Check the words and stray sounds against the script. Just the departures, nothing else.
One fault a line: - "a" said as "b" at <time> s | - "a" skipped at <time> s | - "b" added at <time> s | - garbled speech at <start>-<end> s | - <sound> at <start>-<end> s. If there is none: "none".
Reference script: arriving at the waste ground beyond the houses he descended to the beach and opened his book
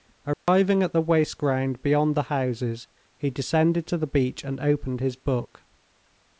- dropout at 0.3-0.5 s